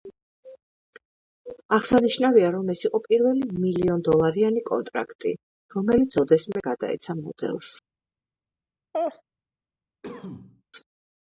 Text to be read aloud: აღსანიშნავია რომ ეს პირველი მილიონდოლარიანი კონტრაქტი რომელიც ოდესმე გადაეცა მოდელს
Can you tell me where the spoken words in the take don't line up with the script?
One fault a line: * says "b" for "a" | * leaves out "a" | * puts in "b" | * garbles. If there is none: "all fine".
* puts in "იყო"